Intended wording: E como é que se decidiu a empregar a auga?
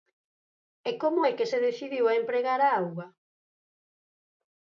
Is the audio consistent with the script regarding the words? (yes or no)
yes